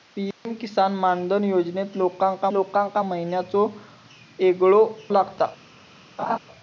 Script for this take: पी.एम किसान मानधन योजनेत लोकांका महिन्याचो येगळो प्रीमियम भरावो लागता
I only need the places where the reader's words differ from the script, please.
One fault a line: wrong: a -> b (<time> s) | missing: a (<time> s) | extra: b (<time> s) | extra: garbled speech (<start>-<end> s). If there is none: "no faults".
extra: लोकांका (2.5 s)
missing: प्रीमियम भरावो (4.8 s)